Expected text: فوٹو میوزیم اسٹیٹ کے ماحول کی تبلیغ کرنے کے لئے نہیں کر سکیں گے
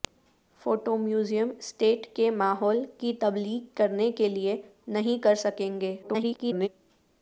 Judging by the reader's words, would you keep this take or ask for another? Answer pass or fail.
fail